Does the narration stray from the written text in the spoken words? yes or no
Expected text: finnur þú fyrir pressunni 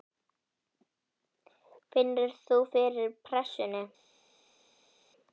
no